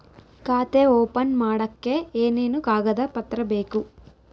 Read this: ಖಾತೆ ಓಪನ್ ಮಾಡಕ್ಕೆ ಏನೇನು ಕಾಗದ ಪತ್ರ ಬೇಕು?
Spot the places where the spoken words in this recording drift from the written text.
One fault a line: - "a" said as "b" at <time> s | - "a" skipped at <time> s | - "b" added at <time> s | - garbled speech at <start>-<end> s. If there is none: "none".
none